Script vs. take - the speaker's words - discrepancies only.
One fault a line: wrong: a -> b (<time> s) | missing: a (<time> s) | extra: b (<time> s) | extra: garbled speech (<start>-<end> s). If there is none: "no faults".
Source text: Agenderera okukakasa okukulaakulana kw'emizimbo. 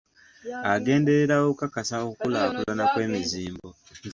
no faults